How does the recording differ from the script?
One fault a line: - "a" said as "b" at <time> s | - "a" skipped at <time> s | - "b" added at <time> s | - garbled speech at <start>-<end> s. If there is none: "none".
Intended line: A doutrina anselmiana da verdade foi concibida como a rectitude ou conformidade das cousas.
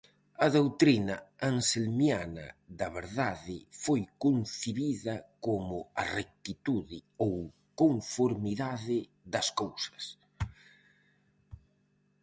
none